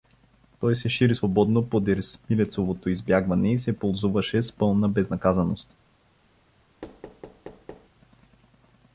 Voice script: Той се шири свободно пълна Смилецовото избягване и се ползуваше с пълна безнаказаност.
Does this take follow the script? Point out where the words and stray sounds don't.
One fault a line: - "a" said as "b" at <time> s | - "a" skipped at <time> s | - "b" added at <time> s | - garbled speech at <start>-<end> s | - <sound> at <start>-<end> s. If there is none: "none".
- "пълна" said as "подир" at 1.7 s
- thud at 6.8-7.9 s